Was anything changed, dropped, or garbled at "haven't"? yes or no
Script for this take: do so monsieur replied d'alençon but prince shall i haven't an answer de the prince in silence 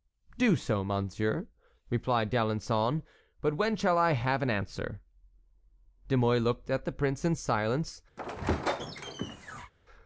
yes